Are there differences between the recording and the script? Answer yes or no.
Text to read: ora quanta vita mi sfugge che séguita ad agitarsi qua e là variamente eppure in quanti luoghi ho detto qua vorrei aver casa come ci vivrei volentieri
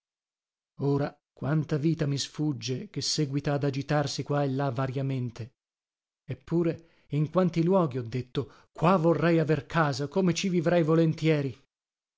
no